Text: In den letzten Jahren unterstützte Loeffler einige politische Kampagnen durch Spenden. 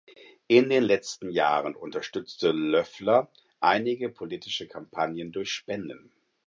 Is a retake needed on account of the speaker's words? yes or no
no